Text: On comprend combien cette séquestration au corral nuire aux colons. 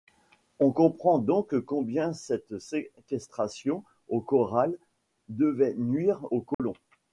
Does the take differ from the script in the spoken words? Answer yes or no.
yes